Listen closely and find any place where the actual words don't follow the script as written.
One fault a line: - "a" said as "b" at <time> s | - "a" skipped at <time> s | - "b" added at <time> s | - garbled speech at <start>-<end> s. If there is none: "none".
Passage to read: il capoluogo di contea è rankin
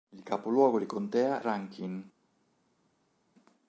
- "è" skipped at 1.4 s